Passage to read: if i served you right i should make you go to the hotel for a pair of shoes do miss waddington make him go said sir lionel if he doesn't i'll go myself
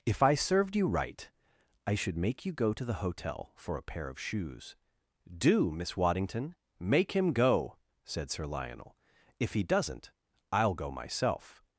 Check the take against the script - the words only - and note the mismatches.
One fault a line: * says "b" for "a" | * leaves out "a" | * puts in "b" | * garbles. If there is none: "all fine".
all fine